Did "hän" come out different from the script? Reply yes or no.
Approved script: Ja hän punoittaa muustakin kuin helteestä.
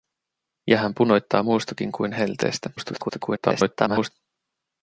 no